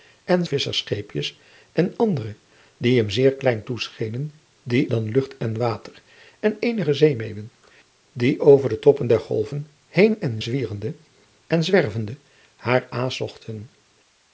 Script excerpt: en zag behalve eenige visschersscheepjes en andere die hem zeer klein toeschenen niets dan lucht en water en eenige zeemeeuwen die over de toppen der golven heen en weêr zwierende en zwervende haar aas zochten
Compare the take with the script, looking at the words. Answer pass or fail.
fail